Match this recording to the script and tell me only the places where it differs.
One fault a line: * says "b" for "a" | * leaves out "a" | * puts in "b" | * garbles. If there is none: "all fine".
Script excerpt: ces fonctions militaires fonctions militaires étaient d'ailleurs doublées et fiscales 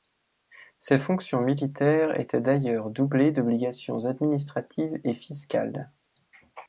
* leaves out "fonctions militaires"
* puts in "d'obligations administratives"